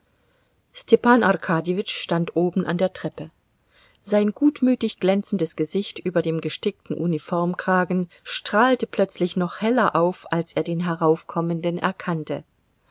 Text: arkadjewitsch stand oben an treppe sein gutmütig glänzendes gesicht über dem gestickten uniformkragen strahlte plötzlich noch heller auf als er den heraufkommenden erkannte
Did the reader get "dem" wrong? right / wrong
right